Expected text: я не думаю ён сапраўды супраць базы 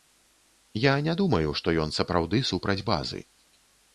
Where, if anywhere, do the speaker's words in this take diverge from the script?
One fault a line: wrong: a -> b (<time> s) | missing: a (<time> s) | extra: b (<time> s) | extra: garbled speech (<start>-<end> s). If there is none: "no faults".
extra: што (1.6 s)